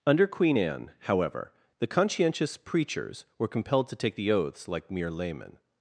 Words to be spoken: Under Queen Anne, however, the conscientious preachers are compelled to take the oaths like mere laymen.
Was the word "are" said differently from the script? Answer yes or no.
yes